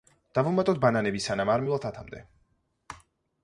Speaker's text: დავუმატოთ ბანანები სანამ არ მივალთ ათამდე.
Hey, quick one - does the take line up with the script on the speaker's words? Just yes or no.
yes